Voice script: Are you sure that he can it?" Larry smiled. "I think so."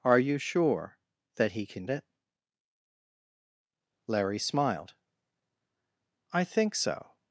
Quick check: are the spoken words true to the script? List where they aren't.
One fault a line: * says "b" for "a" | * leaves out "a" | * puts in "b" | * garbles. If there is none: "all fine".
all fine